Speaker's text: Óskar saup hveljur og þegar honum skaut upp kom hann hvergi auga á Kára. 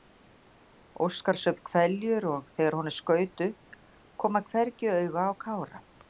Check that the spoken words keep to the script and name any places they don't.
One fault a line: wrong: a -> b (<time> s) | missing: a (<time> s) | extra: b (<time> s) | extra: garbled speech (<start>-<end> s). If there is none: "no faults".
no faults